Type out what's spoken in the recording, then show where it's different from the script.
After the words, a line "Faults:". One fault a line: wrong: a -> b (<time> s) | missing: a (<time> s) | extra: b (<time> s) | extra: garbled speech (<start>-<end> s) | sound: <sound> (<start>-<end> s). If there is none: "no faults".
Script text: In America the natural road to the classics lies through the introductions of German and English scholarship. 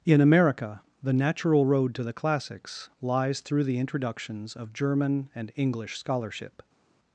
In America the natural road to the classics lies through the introductions of German and English scholarship.
Faults:
no faults